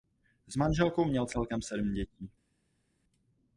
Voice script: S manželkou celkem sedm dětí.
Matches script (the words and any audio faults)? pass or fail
fail